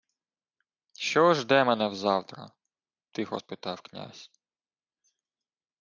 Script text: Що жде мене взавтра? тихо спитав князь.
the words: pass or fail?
pass